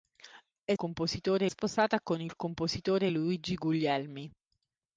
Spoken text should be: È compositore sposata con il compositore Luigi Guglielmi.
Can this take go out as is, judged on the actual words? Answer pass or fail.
pass